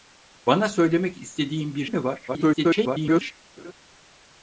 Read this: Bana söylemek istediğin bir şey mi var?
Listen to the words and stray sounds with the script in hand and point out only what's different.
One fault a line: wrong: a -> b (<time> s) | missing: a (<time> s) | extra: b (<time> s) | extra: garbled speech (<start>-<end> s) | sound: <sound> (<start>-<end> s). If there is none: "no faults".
missing: şey (1.9 s)
extra: garbled speech (2.3-3.3 s)
sound: laugh (3.6-3.7 s)